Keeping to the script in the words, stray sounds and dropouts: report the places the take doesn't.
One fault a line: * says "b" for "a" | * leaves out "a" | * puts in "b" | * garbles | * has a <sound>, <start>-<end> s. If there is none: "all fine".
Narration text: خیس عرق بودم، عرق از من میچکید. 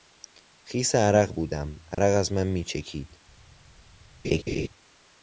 * has a dropout, 1.9-2.0 s
* has a laugh, 4.2-4.7 s